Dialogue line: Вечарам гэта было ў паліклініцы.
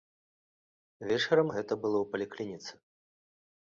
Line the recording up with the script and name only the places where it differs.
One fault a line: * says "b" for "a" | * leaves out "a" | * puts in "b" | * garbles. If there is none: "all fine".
all fine